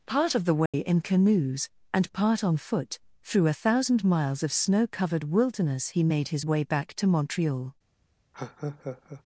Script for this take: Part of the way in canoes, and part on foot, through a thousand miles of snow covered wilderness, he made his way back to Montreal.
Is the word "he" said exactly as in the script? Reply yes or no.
yes